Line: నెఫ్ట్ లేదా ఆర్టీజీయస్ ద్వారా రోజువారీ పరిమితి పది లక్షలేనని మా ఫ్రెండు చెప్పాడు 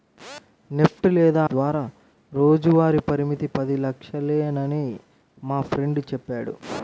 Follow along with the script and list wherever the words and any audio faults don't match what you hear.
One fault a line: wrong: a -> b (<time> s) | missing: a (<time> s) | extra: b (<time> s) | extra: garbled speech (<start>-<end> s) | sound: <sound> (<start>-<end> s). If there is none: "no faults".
missing: ఆర్టీజీయస్ (1.4 s)